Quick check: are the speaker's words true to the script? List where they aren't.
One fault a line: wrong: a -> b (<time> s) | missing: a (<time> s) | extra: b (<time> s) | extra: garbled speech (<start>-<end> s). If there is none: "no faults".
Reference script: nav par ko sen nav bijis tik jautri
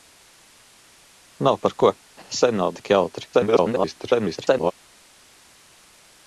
missing: bijis (2.8 s)
extra: garbled speech (3.3-4.7 s)